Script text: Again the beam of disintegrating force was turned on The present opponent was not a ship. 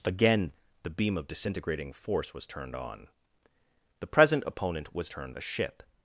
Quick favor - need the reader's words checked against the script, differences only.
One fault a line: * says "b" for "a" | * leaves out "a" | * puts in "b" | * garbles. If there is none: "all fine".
* says "turned" for "not"